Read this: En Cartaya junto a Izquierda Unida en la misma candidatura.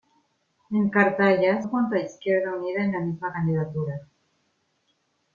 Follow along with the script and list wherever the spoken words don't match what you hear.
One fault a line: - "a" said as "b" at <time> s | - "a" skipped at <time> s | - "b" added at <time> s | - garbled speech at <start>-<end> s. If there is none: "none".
none